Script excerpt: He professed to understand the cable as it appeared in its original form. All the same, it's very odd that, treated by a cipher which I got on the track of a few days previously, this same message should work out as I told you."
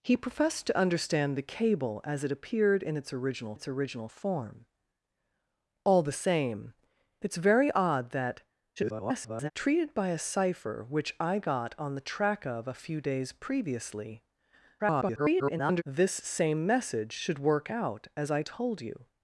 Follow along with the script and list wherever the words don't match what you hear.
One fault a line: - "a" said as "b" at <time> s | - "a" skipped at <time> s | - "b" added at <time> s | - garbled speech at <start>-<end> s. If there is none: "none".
- "its original" added at 3.5 s
- garbled speech at 8.8-9.5 s
- garbled speech at 14.8-15.8 s